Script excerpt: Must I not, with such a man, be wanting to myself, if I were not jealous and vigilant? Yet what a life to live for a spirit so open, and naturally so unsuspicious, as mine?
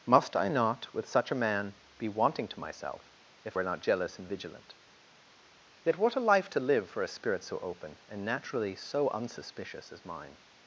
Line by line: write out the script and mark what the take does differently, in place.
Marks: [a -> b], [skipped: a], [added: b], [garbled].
Must I not, with such a man, be wanting to myself, if [skipped: I] were not jealous and vigilant? Yet what a life to live for a spirit so open, and naturally so unsuspicious, as mine?